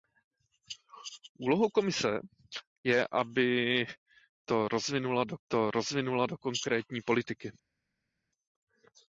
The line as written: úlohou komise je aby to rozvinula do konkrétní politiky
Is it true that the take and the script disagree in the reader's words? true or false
true